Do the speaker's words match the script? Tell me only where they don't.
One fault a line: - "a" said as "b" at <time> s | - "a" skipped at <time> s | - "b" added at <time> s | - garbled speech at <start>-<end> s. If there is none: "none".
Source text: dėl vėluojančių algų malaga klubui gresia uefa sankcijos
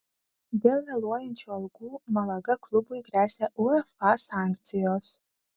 none